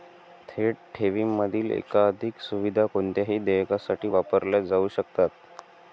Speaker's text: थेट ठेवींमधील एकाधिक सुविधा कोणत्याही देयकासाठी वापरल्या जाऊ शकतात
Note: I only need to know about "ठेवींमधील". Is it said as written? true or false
true